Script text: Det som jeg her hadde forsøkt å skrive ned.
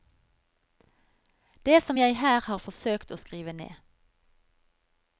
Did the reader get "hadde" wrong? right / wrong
wrong